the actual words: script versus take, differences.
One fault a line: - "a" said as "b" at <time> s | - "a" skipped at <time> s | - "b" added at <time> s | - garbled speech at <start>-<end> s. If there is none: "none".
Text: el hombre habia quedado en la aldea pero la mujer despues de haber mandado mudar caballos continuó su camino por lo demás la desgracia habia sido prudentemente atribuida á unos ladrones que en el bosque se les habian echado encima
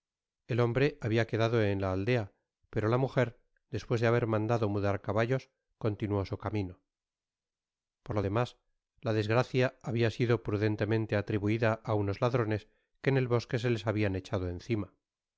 none